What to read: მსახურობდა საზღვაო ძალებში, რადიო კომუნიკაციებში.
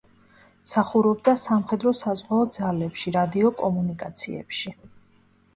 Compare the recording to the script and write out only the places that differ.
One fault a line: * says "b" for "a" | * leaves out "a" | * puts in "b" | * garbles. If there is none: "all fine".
* puts in "სამხედრო"